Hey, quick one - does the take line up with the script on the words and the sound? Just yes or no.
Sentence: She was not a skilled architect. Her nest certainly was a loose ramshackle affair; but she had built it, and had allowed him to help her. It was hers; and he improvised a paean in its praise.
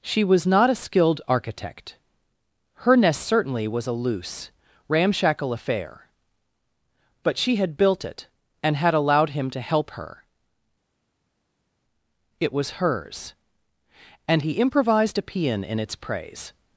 yes